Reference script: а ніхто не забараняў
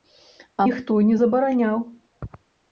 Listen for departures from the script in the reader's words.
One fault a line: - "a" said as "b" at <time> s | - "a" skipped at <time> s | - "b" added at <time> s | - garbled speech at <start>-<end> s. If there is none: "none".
none